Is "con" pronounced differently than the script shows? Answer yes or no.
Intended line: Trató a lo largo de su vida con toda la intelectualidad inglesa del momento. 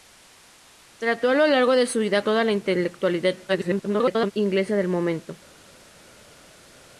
yes